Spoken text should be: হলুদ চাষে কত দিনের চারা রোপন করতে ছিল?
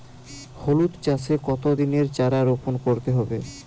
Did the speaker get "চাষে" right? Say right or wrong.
right